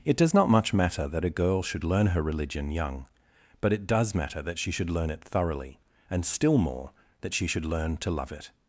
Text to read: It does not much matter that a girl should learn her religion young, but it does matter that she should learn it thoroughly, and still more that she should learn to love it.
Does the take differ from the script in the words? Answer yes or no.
no